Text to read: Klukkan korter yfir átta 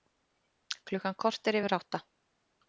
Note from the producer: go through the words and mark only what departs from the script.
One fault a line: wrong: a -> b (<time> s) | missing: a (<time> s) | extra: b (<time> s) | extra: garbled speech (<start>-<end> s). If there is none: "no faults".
no faults